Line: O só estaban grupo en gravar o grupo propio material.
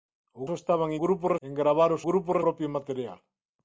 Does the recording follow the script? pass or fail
pass